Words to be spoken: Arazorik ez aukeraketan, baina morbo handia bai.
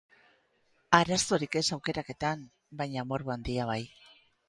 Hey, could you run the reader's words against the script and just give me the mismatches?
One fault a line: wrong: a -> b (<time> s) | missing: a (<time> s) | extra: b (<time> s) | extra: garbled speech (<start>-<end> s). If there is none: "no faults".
no faults